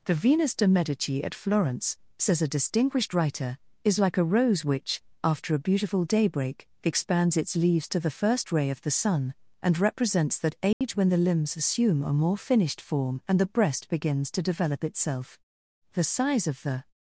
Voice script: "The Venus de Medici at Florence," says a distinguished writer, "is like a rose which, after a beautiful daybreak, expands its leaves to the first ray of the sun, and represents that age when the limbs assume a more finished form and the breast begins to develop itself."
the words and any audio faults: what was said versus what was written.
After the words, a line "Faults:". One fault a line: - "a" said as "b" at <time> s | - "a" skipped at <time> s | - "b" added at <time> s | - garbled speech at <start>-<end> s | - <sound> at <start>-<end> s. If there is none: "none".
"The Venus de Medici at Florence," says a distinguished writer, "is like a rose which, after a beautiful daybreak, expands its leaves to the first ray of the sun, and represents that age when the limbs assume a more finished form and the breast begins to develop itself." The size of the
Faults:
- dropout at 10.7-10.8 s
- "The size of the" added at 15.9 s